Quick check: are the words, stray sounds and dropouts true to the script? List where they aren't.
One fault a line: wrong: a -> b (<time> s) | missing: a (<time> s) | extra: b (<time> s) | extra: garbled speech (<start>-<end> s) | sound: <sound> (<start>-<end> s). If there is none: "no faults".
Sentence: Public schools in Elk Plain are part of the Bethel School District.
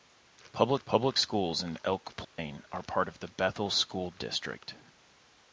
extra: public (0.8 s)
sound: dropout (2.2-2.4 s)